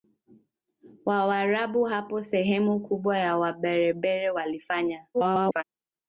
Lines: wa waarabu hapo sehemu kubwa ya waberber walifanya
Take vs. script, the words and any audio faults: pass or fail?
fail